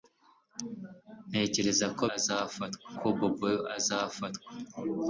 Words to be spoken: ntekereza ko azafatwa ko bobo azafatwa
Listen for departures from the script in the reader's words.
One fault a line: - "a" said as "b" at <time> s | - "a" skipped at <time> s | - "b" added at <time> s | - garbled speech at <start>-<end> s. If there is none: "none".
none